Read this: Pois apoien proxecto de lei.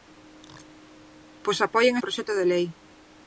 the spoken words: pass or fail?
pass